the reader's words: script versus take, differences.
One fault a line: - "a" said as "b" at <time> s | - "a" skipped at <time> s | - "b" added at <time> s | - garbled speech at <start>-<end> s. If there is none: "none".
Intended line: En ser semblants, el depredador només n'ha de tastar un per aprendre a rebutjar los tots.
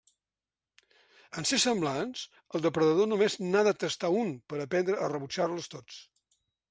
none